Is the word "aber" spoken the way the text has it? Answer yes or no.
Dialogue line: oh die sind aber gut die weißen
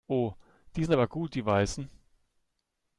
yes